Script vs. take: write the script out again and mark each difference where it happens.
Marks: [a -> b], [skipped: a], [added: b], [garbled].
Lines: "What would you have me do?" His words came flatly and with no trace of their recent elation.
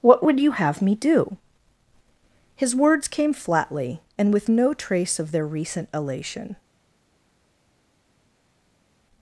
"What would you have me do?" His words came flatly and with no trace of their recent elation.